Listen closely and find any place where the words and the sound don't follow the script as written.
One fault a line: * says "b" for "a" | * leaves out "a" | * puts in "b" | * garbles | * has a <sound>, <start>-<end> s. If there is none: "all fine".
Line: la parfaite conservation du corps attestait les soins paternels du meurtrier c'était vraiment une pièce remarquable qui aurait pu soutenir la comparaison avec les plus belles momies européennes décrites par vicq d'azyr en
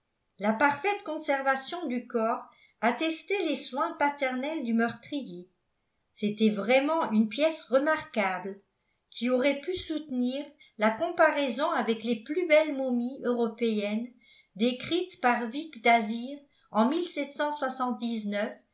all fine